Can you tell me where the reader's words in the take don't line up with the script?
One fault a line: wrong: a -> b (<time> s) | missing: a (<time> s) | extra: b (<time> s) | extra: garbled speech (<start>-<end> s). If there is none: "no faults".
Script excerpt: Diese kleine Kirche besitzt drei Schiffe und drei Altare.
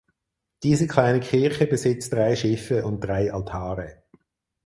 no faults